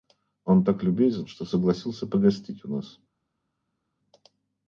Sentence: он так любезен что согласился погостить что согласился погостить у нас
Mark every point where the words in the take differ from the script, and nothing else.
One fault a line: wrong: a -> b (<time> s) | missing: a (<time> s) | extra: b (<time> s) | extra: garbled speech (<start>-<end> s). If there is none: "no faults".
missing: что согласился погостить (2.6 s)